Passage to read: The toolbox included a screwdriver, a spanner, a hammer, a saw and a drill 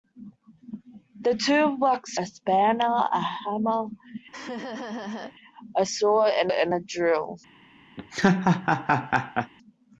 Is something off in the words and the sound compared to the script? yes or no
yes